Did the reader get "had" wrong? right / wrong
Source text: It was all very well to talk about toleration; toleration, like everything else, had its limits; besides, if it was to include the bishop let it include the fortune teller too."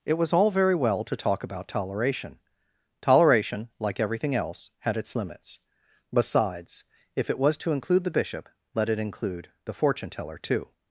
right